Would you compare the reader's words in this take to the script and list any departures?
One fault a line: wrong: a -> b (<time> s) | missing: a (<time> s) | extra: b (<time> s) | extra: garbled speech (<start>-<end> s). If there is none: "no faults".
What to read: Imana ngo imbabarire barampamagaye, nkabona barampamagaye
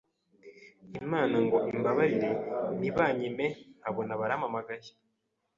wrong: barampamagaye -> ntibanyime (2.8 s)